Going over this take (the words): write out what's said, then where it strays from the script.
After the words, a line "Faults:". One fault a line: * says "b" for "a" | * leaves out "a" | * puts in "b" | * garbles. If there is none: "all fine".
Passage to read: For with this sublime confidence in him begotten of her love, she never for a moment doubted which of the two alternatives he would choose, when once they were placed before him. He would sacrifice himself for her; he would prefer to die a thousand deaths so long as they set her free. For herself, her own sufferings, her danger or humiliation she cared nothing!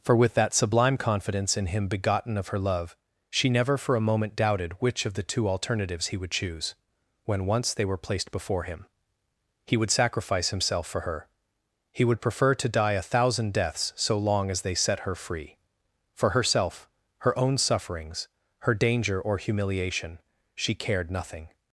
For with that sublime confidence in him begotten of her love, she never for a moment doubted which of the two alternatives he would choose, when once they were placed before him. He would sacrifice himself for her; he would prefer to die a thousand deaths so long as they set her free. For herself, her own sufferings, her danger or humiliation she cared nothing!
Faults:
* says "that" for "this"